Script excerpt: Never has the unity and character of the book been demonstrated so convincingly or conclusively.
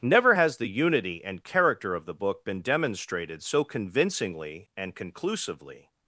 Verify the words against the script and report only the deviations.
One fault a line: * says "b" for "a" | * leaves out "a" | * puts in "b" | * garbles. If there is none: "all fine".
* says "and" for "or"